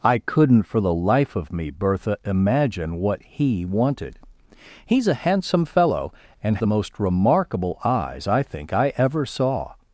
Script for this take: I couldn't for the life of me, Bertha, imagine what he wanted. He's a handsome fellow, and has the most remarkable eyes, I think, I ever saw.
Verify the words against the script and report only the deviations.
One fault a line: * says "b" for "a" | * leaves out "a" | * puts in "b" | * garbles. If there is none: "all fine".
* leaves out "has"